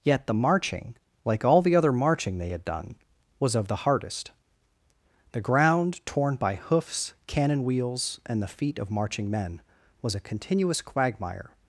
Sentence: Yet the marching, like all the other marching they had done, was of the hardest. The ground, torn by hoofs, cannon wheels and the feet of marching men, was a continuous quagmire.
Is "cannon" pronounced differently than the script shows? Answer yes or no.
no